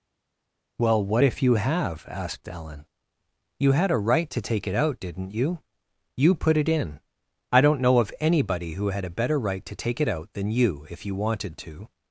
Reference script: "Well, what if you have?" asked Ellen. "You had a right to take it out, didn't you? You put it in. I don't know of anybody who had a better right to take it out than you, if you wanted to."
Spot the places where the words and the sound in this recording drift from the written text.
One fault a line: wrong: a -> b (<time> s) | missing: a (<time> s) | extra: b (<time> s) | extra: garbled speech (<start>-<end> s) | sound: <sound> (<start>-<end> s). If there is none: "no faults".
no faults